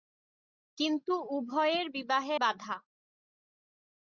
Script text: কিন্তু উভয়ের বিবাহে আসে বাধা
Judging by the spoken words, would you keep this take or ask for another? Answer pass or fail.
fail